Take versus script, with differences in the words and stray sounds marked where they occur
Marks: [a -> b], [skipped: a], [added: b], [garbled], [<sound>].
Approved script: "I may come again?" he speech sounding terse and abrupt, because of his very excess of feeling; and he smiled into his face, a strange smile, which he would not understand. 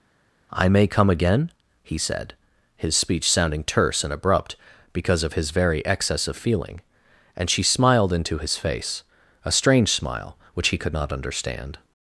"I may come again?" he [added: said his] speech sounding terse and abrupt, because of his very excess of feeling; and [he -> she] smiled into his face, a strange smile, which he [would -> could] not understand.